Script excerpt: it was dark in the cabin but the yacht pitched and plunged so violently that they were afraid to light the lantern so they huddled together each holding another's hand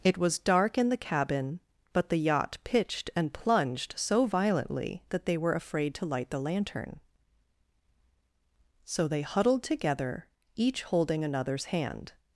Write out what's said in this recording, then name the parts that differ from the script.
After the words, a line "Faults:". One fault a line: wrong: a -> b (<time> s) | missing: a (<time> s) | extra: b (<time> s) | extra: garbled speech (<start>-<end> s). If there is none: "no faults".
it was dark in the cabin but the yacht pitched and plunged so violently that they were afraid to light the lantern so they huddled together each holding another's hand
Faults:
no faults